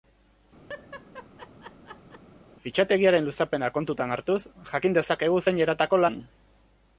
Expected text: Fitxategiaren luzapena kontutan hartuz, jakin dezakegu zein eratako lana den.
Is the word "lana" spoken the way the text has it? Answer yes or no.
no